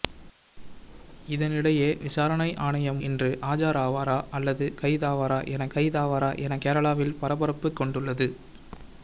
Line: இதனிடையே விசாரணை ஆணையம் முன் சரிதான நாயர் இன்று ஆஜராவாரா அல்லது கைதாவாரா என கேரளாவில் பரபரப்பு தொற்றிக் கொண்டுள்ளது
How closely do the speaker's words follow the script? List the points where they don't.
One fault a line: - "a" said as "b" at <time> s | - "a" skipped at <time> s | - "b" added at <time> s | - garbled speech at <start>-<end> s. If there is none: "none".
- "முன் சரிதான நாயர்" skipped at 3.0 s
- "கைதாவாரா என" added at 5.7 s
- "தொற்றிக்" skipped at 7.7 s